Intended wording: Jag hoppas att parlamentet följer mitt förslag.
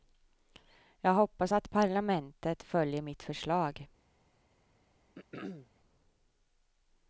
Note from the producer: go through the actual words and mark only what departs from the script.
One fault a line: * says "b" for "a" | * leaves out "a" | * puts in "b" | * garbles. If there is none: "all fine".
all fine